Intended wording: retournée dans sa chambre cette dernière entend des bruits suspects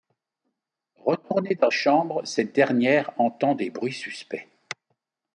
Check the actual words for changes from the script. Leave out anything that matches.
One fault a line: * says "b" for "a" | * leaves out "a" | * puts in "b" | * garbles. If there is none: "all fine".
* leaves out "sa"